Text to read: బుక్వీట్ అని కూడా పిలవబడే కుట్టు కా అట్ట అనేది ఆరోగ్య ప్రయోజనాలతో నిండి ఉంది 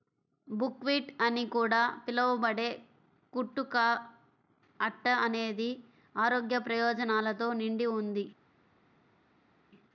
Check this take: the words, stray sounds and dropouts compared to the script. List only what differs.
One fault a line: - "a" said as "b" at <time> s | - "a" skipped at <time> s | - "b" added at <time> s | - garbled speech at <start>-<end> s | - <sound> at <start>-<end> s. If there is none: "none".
none